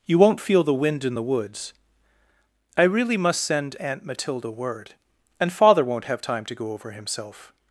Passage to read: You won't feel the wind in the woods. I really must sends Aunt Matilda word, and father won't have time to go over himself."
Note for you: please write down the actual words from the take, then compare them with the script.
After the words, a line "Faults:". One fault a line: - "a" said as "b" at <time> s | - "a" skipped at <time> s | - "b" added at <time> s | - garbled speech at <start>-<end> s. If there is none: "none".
You won't feel the wind in the woods. I really must send Aunt Matilda word, and father won't have time to go over himself."
Faults:
- "sends" said as "send" at 3.4 s